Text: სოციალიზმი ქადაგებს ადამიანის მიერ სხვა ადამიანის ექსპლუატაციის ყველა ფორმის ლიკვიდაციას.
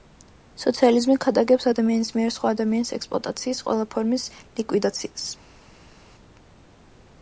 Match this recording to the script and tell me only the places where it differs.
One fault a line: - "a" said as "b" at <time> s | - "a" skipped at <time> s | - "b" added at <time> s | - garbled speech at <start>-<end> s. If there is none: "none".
none